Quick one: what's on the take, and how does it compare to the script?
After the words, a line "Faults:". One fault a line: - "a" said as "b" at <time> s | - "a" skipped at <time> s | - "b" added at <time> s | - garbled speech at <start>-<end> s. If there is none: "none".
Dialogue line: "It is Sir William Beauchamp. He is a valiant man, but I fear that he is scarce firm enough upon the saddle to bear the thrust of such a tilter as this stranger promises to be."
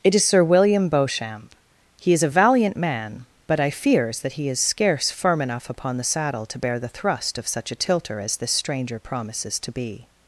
"It is Sir William Beauchamp. He is a valiant man, but I fears that he is scarce firm enough upon the saddle to bear the thrust of such a tilter as this stranger promises to be."
Faults:
- "fear" said as "fears" at 3.7 s